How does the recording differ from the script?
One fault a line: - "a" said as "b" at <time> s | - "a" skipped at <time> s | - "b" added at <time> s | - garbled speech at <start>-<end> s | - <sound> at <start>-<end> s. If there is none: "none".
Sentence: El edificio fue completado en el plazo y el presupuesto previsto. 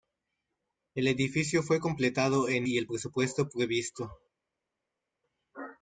- "el plazo" skipped at 2.7 s